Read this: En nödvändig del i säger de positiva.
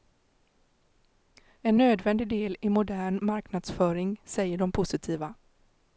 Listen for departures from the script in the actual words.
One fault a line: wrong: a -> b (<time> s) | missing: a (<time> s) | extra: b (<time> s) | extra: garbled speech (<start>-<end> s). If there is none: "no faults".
extra: modern marknadsföring (2.7 s)